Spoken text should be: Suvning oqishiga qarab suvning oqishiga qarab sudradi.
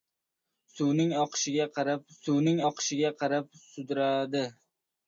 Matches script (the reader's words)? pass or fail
pass